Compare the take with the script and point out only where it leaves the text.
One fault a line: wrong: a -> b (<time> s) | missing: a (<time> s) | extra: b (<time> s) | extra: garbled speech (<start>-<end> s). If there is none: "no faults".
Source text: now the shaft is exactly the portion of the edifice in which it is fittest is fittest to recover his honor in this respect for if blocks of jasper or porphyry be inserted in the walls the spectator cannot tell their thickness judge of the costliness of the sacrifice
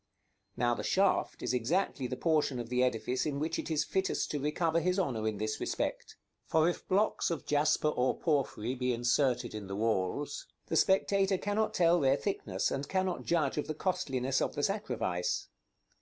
missing: is fittest (4.3 s)
extra: and cannot (12.7 s)